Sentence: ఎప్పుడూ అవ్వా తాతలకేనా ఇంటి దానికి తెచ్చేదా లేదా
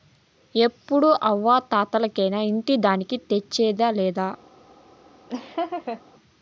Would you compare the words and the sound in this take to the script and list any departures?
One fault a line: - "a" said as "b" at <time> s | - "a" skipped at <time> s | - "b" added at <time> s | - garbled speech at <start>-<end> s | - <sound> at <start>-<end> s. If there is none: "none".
- laugh at 5.3-6.0 s